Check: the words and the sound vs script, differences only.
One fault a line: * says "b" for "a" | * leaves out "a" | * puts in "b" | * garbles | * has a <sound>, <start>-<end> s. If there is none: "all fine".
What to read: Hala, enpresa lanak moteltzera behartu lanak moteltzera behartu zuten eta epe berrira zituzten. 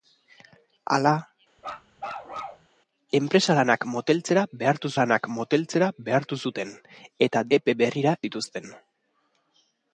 * has a bark, 1.6-2.7 s